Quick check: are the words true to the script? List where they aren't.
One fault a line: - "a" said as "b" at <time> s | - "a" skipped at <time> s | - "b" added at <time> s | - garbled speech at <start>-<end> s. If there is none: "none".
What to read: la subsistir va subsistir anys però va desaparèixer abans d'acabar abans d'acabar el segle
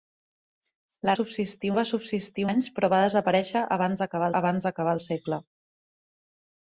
none